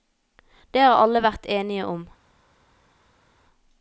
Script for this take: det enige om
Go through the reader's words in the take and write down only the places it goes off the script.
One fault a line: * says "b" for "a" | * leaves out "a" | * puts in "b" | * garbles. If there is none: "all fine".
* puts in "har alle vært"